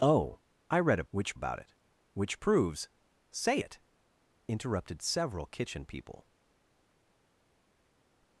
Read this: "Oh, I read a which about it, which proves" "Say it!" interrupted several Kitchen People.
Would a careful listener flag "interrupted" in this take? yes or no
no